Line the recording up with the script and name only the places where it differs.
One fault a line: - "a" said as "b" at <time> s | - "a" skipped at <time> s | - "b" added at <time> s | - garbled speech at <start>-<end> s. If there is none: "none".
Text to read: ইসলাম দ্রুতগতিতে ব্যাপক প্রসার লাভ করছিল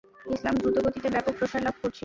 none